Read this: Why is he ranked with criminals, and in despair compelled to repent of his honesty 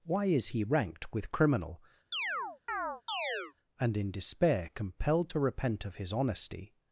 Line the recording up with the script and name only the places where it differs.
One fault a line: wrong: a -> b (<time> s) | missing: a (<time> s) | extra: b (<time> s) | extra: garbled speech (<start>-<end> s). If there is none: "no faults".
wrong: criminals -> criminal (1.3 s)